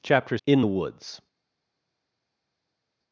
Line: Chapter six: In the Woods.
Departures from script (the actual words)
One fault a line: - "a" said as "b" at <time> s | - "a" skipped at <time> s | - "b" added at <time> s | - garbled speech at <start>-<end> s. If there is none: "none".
- "six" skipped at 0.4 s